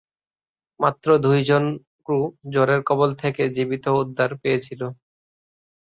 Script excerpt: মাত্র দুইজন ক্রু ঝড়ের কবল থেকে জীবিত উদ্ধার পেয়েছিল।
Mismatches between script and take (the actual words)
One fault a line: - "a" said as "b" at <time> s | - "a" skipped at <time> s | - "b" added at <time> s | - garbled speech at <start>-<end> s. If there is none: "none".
none